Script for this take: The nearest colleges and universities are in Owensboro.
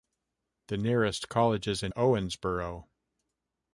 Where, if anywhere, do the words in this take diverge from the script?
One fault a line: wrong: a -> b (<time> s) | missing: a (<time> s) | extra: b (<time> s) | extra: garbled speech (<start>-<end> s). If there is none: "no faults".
missing: universities are in (1.9 s)